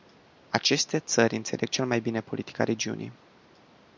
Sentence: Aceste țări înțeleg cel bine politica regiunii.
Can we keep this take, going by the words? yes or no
no